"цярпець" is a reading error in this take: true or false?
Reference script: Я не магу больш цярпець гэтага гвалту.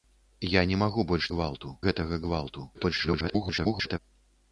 true